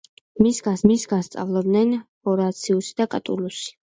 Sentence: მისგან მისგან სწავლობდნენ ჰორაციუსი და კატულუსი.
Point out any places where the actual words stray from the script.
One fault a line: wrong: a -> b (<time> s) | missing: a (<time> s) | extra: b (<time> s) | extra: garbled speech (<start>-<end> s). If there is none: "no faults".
no faults